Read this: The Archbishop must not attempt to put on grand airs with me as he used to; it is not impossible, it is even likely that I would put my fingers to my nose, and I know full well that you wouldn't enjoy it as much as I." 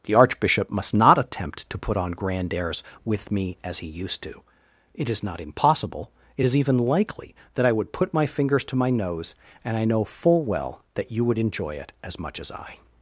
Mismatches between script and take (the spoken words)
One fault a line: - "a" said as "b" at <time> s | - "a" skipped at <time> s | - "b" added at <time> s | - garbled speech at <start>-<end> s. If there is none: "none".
- "wouldn't" said as "would" at 11.2 s